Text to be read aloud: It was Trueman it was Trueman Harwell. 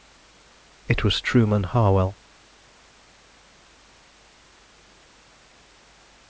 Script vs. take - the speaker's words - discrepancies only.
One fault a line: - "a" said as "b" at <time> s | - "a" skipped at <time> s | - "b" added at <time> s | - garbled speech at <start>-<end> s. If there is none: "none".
- "it was Trueman" skipped at 1.7 s